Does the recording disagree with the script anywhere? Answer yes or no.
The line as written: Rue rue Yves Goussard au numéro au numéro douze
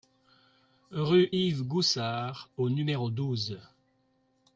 yes